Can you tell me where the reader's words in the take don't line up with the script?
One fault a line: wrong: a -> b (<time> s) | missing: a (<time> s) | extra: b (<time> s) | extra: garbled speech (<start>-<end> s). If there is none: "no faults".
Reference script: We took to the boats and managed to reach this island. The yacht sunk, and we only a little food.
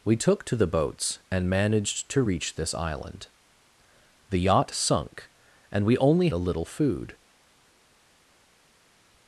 no faults